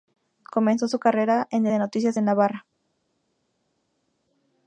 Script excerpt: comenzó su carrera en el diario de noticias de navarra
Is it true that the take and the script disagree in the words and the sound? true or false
true